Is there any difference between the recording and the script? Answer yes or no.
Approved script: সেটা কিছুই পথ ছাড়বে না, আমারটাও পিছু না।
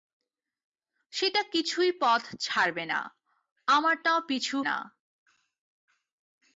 no